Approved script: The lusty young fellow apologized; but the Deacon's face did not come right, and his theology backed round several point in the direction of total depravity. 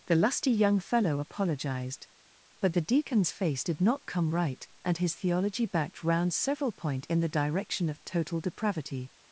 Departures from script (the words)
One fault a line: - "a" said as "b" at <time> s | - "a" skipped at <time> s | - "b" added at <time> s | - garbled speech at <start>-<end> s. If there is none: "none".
none